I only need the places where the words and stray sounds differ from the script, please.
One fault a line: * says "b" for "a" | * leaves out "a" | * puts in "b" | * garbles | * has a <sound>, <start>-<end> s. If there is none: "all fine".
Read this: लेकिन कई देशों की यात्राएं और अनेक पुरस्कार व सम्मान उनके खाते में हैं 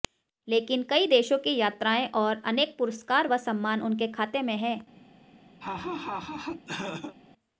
* has a laugh, 5.6-7.2 s